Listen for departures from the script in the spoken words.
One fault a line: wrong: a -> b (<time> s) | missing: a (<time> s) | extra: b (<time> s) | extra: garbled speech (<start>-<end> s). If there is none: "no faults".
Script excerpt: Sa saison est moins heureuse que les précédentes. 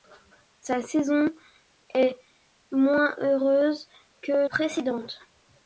missing: les (4.5 s)